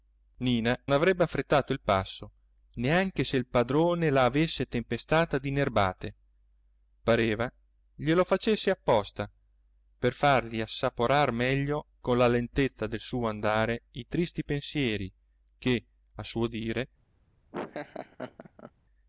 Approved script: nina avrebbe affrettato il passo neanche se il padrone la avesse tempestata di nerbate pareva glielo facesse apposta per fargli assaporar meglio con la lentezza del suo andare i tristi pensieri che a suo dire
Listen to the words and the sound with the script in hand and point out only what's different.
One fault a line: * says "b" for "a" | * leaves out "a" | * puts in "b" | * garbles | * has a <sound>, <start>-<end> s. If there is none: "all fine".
* has a laugh, 17.5-18.7 s